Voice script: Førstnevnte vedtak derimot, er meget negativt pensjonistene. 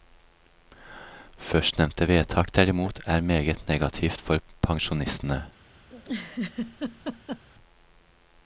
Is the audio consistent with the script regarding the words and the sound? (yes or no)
no